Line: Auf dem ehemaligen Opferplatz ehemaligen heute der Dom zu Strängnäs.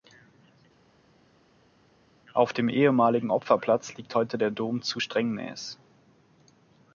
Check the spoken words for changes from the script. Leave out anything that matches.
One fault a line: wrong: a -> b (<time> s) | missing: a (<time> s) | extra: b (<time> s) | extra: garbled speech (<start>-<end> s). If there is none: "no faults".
wrong: ehemaligen -> liegt (3.9 s)